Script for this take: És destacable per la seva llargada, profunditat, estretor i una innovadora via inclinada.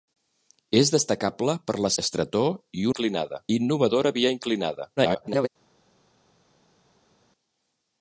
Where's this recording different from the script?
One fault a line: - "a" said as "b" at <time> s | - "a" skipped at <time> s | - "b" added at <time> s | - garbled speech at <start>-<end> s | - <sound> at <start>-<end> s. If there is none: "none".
- "seva llargada profunditat" skipped at 1.9 s
- "una" said as "inclinada" at 2.9 s
- garbled speech at 5.0-5.5 s